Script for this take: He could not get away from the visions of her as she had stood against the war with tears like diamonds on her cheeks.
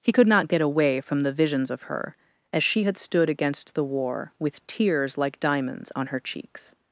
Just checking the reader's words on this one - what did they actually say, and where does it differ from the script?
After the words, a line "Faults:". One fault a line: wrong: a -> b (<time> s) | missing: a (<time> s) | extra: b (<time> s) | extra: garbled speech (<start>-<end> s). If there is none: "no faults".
He could not get away from the visions of her as she had stood against the war with tears like diamonds on her cheeks.
Faults:
no faults